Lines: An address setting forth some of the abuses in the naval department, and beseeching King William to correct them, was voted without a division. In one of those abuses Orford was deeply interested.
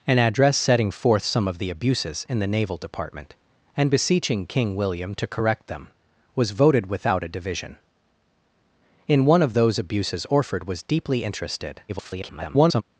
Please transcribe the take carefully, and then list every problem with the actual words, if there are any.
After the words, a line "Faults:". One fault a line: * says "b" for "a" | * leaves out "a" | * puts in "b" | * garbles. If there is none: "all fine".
An address setting forth some of the abuses in the naval department, and beseeching King William to correct them, was voted without a division. In one of those abuses Orford was deeply interested. [garbled]
Faults:
* garbles